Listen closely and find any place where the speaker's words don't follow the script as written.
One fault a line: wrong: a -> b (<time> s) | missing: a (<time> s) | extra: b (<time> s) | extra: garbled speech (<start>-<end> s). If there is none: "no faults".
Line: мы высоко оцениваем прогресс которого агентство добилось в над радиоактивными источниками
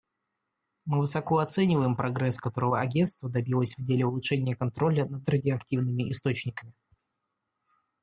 extra: деле улучшения контроля (3.8 s)